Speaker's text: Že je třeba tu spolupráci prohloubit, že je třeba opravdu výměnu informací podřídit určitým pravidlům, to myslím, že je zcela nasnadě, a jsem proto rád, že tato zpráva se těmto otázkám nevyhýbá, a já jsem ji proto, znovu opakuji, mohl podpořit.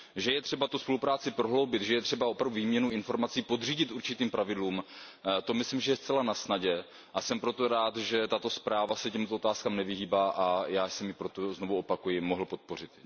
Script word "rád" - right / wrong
right